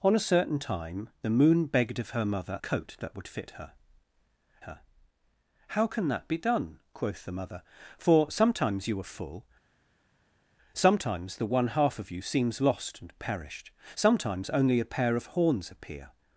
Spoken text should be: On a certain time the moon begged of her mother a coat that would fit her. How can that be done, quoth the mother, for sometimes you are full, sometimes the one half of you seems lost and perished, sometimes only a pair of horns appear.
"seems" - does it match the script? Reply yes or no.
yes